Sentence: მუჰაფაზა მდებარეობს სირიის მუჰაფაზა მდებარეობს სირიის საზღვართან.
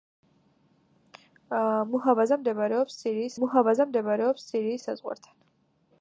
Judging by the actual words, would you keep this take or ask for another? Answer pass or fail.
pass